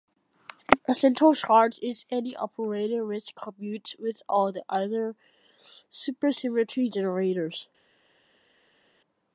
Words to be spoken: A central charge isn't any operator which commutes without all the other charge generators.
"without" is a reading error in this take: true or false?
true